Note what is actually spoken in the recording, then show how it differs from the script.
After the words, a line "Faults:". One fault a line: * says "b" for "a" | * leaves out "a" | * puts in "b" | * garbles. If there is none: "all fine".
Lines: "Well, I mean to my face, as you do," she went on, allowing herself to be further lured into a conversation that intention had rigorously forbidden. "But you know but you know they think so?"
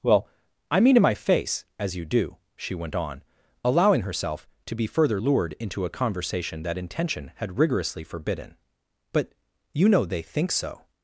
"Well, I mean to my face, as you do," she went on, allowing herself to be further lured into a conversation that intention had rigorously forbidden. "But you know they think so?"
Faults:
* leaves out "but you know"